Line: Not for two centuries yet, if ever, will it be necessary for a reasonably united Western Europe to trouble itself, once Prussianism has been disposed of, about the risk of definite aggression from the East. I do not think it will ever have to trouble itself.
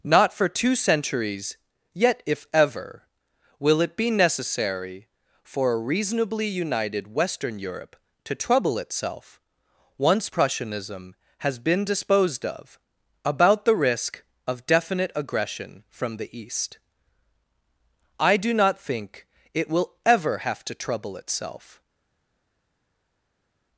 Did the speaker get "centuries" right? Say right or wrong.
right